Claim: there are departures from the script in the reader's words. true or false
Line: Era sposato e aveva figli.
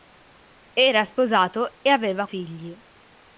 false